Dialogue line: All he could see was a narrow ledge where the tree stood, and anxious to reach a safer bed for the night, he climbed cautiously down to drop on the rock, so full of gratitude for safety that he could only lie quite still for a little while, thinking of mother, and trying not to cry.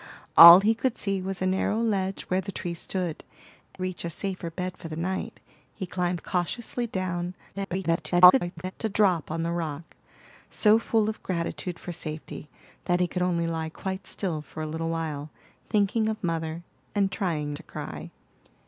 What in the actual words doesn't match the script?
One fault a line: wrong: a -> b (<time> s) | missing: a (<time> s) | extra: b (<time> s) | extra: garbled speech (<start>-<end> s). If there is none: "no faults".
missing: and anxious to (3.2 s)
extra: garbled speech (7.5-8.7 s)
missing: not (17.5 s)